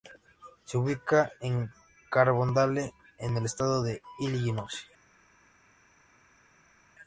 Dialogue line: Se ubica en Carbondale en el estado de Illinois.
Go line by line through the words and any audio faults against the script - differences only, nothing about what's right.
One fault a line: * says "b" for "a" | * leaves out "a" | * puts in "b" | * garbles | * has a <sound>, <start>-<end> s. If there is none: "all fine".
all fine